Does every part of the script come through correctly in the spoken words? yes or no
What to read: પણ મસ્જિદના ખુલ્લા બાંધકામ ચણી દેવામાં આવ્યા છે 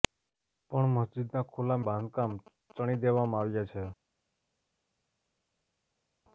yes